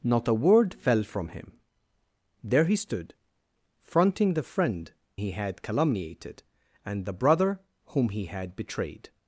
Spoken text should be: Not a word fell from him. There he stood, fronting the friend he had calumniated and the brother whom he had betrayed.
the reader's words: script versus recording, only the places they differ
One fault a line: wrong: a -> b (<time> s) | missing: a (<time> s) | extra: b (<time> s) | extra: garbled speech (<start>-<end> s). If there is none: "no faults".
no faults